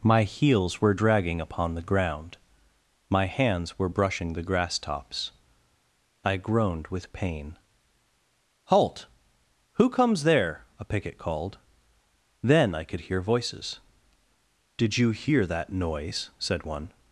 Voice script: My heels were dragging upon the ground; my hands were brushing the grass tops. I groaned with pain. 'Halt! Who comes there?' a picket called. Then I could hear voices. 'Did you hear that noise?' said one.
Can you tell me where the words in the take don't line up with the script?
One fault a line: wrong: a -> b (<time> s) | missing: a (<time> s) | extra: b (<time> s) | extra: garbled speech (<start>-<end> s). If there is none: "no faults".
no faults